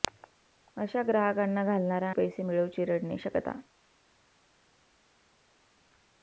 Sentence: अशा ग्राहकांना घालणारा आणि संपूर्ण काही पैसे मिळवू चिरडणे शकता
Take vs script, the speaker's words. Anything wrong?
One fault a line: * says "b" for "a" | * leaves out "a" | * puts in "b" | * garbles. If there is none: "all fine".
* leaves out "आणि संपूर्ण काही"